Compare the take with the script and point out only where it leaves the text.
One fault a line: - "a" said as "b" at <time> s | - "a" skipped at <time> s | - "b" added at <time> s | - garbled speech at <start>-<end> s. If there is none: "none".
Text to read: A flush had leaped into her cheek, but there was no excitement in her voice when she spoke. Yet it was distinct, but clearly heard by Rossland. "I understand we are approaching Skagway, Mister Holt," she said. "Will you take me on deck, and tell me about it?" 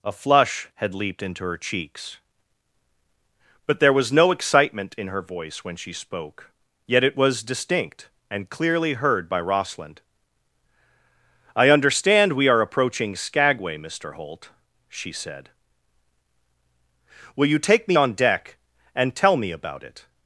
- "cheek" said as "cheeks" at 1.6 s
- "but" said as "and" at 8.3 s